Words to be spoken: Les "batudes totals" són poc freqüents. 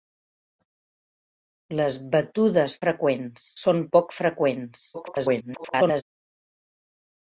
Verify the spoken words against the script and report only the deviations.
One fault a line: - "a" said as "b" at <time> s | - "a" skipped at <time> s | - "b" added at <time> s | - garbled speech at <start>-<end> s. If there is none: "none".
- "totals" said as "freqüents" at 2.8 s
- garbled speech at 4.9-6.0 s